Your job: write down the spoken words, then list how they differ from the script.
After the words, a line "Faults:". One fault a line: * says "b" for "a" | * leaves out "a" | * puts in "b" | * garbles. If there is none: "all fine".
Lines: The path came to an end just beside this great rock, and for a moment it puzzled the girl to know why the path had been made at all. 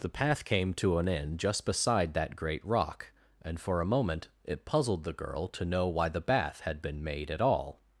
The path came to an end just beside that great rock, and for a moment it puzzled the girl to know why the bath had been made at all.
Faults:
* says "that" for "this"
* says "bath" for "path"